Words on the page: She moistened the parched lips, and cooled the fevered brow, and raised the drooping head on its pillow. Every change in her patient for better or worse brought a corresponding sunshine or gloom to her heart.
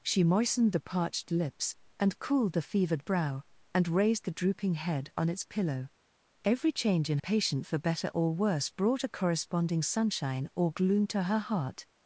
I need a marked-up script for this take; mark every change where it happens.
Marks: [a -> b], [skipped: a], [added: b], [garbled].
She moistened the parched lips, and cooled the fevered brow, and raised the drooping head on its pillow. Every change in [skipped: her] patient for better or worse brought a corresponding sunshine or gloom to her heart.